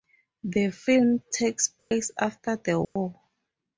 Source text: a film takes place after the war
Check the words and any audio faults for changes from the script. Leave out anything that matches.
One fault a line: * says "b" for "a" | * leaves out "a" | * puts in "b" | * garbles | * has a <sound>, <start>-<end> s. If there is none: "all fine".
* says "the" for "a"
* has a dropout, 1.8-1.9 s
* has a dropout, 2.8-3.0 s